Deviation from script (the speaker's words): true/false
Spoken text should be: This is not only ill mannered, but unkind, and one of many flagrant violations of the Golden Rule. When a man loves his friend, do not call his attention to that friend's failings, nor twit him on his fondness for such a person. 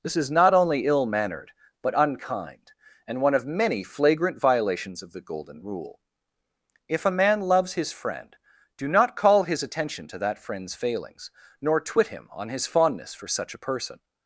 true